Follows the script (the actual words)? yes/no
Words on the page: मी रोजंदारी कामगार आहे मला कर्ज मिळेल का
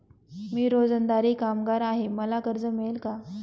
yes